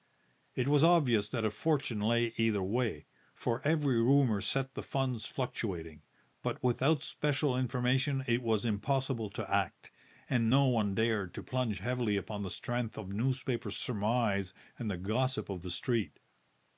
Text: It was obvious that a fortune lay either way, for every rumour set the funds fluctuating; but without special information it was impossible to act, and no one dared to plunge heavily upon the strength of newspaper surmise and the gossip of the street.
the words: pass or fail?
pass